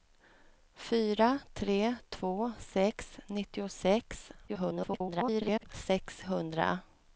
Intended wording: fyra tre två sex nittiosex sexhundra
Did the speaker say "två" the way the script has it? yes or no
yes